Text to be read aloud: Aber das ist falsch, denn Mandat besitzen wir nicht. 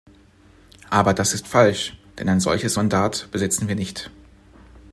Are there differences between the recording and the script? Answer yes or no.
yes